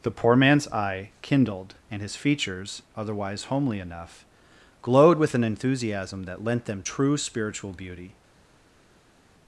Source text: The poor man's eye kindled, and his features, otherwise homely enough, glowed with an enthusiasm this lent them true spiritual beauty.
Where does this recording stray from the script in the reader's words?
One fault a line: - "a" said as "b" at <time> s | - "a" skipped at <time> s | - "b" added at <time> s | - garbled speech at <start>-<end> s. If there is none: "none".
- "this" said as "that" at 6.2 s